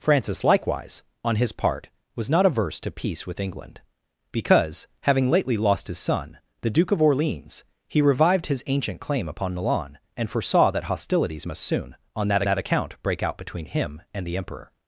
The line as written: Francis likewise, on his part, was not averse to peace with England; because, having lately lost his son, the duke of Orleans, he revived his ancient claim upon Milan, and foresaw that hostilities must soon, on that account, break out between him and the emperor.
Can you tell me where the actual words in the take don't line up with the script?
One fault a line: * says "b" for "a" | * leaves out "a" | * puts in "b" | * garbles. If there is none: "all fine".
* puts in "that"